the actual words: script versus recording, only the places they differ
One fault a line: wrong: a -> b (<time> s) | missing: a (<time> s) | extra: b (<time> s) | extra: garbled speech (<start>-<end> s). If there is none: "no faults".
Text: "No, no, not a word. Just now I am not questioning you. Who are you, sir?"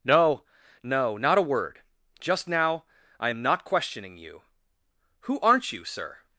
wrong: are -> aren't (5.4 s)